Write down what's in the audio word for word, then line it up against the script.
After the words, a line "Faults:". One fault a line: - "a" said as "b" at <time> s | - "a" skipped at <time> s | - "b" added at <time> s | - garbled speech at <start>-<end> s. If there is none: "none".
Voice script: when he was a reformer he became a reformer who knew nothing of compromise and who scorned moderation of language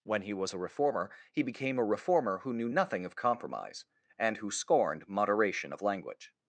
when he was a reformer he became a reformer who knew nothing of compromise and who scorned moderation of language
Faults:
none